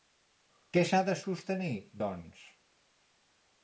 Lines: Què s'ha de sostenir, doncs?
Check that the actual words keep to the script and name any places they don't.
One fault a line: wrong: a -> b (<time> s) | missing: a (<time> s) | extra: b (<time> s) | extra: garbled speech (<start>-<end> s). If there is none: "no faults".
no faults